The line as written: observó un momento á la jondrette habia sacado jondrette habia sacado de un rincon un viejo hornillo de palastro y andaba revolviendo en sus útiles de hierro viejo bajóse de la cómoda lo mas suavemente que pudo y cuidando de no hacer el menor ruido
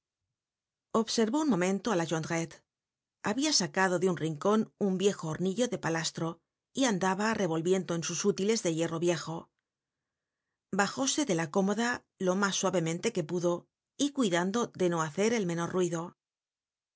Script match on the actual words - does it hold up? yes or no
no